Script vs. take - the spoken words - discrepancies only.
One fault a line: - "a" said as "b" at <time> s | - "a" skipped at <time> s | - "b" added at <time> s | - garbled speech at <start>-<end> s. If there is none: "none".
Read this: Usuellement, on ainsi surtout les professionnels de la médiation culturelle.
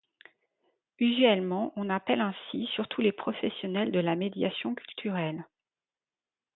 - "appelle" added at 1.9 s